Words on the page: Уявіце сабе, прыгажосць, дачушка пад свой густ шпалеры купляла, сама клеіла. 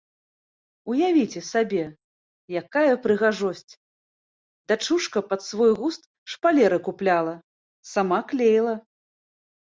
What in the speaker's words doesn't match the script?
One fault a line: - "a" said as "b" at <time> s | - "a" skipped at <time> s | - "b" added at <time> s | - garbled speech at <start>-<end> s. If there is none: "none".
- "якая" added at 2.6 s